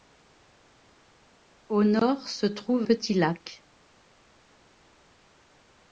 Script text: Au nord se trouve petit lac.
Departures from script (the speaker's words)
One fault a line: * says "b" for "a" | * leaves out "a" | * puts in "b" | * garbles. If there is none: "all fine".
all fine